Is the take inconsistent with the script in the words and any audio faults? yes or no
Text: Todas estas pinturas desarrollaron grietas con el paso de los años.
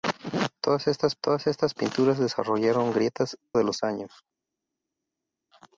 yes